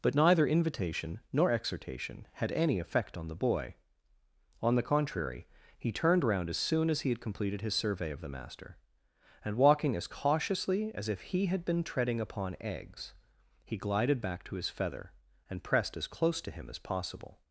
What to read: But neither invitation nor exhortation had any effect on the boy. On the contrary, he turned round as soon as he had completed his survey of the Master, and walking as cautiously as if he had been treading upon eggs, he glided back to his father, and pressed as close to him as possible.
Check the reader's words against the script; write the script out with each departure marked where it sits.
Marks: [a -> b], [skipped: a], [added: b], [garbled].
But neither invitation nor exhortation had any effect on the boy. On the contrary, he turned round as soon as he had completed his survey of the Master, and walking as cautiously as if he had been treading upon eggs, he glided back to his [father, -> feather] and pressed as close to him as possible.